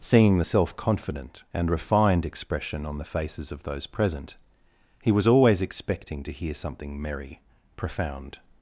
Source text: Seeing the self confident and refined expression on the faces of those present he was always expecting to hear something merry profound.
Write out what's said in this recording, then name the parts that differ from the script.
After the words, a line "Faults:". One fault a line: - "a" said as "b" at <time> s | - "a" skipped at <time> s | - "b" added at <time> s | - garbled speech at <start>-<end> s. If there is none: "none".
Seeing the self confident and refined expression on the faces of those present he was always expecting to hear something merry profound.
Faults:
none